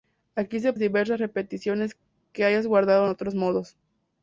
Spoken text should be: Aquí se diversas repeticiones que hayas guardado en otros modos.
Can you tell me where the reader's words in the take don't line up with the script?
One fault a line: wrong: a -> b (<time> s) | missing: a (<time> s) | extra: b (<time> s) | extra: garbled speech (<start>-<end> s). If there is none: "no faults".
no faults